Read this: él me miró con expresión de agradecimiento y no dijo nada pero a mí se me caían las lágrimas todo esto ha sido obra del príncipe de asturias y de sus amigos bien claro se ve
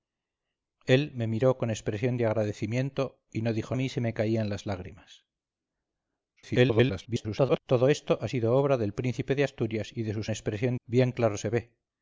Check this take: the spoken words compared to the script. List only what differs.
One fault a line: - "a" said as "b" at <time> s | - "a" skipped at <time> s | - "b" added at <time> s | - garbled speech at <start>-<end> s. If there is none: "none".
- "nada pero" skipped at 3.8 s
- garbled speech at 6.4-7.6 s
- "amigos" said as "expresión" at 10.3 s